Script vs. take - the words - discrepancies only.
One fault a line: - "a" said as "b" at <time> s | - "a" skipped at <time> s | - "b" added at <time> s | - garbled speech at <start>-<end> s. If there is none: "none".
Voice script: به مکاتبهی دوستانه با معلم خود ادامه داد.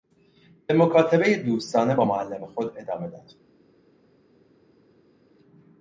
none